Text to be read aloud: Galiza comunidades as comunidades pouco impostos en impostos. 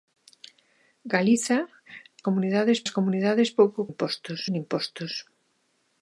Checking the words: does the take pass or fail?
pass